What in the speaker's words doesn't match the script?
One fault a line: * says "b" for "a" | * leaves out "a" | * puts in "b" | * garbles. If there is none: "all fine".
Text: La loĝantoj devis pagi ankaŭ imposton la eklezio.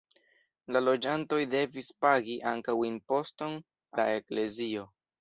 all fine